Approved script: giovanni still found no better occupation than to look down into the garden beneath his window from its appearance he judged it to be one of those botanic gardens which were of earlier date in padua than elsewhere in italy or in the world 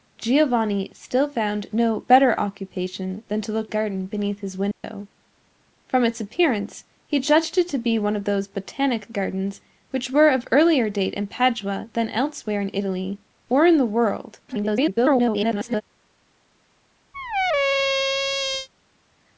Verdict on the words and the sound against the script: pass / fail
fail